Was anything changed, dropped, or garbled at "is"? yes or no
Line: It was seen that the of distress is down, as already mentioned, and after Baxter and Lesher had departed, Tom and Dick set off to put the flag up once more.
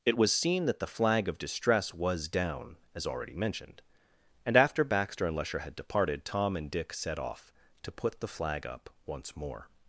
yes